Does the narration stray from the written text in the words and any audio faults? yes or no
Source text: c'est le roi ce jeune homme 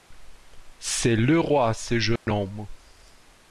yes